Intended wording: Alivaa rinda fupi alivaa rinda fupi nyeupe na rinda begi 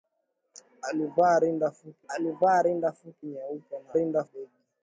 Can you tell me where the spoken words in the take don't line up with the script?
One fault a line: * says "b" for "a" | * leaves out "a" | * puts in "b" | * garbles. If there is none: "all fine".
all fine